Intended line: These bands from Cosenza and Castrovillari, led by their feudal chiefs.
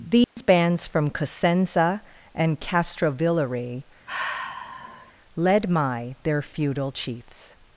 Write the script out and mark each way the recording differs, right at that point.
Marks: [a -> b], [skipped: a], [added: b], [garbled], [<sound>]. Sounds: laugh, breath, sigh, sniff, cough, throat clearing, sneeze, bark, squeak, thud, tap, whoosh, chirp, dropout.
These [dropout] bands from Cosenza and Castrovillari, [sigh] led [by -> my] their feudal chiefs.